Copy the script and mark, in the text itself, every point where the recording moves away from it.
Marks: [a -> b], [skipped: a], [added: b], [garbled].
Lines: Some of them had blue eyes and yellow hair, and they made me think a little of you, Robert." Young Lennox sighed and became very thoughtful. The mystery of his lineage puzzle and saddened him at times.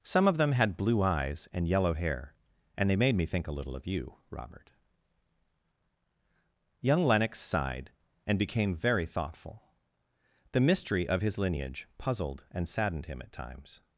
Some of them had blue eyes and yellow hair, and they made me think a little of you, Robert." Young Lennox sighed and became very thoughtful. The mystery of his lineage [puzzle -> puzzled] and saddened him at times.